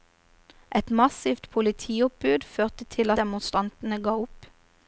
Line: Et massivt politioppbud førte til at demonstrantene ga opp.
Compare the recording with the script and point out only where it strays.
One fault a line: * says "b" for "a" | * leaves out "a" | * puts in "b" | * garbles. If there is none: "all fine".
* leaves out "at"